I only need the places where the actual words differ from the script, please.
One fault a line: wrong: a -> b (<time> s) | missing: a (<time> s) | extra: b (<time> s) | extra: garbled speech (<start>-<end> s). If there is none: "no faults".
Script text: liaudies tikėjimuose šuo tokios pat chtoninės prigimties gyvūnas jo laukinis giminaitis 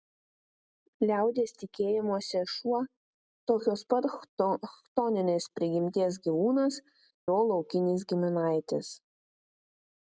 no faults